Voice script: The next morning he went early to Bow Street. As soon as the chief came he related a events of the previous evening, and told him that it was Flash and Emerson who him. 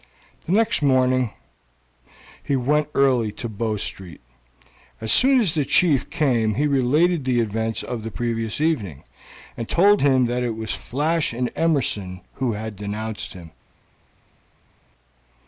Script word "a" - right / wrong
wrong